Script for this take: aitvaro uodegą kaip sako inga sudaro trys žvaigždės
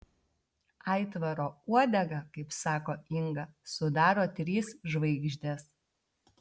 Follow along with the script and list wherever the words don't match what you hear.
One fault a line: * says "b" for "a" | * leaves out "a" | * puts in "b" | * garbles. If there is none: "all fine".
all fine